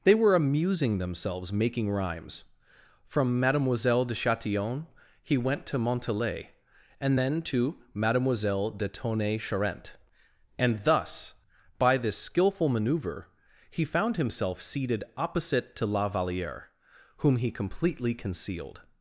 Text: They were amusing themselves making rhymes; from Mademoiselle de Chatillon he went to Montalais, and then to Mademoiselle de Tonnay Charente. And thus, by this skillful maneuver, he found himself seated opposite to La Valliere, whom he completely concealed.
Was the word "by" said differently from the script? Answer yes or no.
no